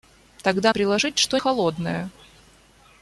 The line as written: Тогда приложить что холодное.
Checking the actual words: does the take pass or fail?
pass